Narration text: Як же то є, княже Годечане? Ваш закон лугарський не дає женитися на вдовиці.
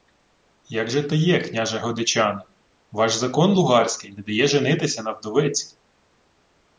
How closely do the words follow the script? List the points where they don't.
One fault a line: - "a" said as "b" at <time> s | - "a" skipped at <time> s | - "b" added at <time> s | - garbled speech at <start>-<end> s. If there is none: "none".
none